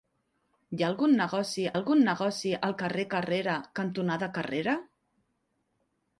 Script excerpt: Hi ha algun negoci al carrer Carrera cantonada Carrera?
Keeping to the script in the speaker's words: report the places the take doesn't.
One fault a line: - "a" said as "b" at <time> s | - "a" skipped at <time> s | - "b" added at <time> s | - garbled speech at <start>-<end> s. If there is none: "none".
- "algun negoci" added at 1.7 s